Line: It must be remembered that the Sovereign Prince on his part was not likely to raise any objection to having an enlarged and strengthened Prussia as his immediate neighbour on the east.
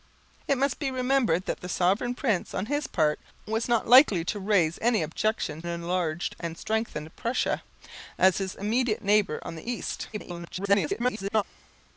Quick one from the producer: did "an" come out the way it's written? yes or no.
no